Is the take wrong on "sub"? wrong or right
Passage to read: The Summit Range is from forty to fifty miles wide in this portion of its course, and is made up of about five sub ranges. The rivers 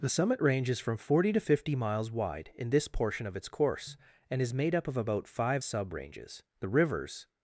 right